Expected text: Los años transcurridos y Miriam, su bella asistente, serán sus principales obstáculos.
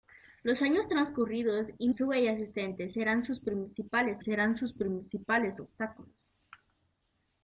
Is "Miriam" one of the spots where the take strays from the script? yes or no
yes